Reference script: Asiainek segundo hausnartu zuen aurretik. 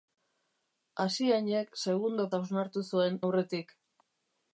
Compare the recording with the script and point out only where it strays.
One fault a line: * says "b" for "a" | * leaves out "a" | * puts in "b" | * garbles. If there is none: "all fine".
all fine